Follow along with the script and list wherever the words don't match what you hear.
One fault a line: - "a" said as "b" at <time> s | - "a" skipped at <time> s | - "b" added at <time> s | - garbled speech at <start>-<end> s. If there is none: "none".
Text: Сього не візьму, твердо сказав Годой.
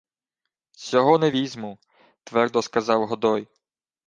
none